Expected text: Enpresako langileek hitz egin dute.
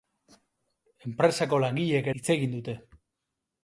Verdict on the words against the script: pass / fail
pass